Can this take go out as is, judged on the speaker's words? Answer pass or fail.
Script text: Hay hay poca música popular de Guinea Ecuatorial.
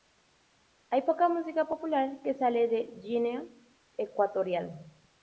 fail